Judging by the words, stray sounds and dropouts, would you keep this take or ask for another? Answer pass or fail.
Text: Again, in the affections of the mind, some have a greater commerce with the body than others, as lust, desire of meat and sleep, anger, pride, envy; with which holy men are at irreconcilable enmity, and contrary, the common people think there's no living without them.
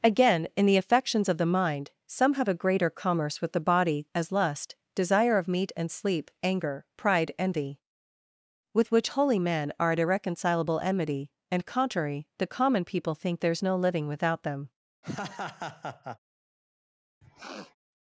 fail